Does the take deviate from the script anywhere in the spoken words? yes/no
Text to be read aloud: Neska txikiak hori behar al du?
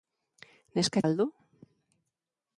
yes